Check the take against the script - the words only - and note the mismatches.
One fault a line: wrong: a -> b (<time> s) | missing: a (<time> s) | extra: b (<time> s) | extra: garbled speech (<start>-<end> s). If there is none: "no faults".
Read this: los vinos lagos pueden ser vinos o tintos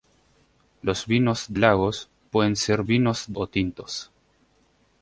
no faults